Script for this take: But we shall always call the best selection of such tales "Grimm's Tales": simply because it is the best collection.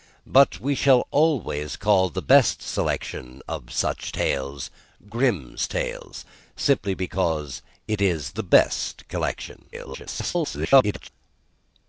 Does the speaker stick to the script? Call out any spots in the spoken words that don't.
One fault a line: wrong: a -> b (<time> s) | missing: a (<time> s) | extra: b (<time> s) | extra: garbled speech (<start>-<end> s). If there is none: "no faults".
extra: garbled speech (9.7-11.1 s)